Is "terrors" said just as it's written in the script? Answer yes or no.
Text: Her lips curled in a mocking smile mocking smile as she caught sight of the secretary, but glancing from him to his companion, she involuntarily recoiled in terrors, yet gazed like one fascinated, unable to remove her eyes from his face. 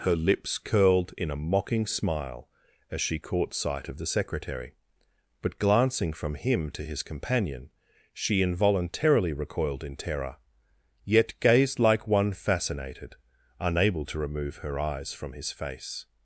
no